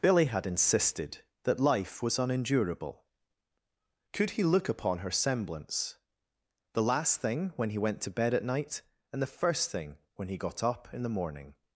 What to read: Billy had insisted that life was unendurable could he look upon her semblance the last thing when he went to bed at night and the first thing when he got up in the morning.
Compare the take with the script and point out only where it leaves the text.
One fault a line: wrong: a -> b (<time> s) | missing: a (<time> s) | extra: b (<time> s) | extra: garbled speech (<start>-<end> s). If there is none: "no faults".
no faults